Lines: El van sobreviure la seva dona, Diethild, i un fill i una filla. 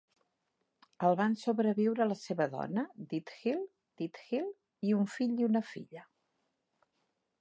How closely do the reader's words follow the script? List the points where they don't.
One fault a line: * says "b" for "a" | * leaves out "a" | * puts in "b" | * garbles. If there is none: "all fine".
* puts in "Diethild"